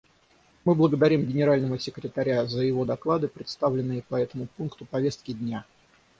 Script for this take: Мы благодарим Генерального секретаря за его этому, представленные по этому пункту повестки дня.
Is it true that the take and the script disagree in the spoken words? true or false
true